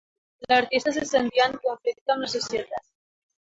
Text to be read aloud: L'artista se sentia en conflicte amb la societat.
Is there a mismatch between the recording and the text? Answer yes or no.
no